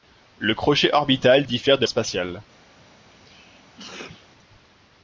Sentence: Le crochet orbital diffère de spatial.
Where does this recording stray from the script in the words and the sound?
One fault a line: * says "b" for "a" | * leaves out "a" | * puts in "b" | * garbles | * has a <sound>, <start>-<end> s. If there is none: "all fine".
* has a sneeze, 3.1-4.3 s